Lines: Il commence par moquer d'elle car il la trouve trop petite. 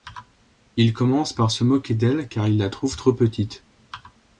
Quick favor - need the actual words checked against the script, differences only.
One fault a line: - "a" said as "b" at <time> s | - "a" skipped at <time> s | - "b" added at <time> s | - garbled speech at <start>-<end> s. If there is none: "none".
- "se" added at 1.5 s